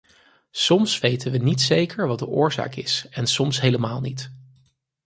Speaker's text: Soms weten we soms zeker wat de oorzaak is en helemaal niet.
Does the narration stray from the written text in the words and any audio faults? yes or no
yes